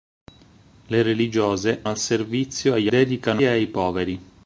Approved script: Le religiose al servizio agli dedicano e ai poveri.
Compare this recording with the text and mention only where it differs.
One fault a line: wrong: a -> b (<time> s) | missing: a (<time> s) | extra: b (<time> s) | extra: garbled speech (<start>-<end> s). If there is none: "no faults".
no faults